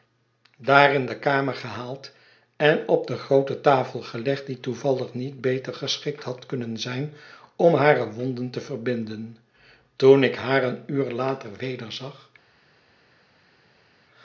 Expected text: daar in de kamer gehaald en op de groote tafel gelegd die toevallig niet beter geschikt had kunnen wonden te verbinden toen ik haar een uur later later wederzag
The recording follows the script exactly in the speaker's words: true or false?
false